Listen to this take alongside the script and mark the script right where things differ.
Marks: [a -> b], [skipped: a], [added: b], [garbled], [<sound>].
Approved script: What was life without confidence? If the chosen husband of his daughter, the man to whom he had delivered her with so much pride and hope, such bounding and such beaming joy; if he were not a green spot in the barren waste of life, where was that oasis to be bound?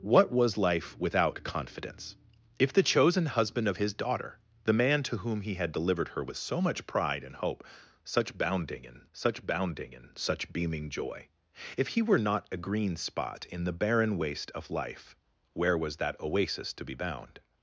What was life without confidence? If the chosen husband of his daughter, the man to whom he had delivered her with so much pride and hope, such bounding and such [added: bounding and such] beaming joy; if he were not a green spot in the barren waste of life, where was that oasis to be bound?